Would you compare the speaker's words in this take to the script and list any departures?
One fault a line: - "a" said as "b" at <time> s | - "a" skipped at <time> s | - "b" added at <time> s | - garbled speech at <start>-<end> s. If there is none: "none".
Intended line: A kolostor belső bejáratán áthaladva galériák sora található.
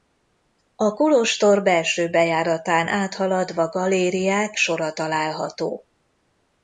none